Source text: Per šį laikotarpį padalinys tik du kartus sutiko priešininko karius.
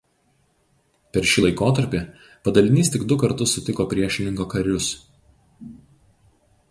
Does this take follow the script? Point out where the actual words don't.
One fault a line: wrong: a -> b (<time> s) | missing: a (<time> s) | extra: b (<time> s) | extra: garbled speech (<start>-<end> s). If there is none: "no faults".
no faults